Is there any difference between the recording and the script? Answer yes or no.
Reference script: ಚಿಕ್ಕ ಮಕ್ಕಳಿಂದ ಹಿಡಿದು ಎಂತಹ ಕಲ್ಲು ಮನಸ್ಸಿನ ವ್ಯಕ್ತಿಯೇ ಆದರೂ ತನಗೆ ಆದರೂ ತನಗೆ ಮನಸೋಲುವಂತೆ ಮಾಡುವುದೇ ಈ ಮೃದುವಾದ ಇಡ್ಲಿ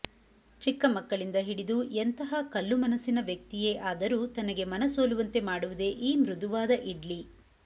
yes